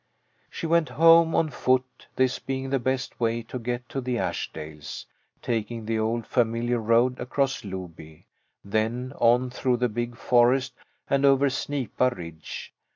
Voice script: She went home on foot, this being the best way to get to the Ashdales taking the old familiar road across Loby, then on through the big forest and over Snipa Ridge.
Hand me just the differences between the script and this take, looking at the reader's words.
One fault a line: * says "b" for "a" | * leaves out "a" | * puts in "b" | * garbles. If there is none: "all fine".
all fine